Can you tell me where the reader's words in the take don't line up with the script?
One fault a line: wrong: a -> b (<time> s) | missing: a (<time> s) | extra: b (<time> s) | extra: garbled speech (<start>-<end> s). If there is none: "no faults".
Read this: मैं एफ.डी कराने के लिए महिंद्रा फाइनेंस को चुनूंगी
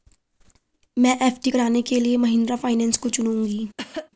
no faults